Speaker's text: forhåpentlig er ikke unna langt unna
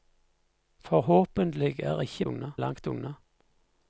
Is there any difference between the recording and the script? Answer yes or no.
no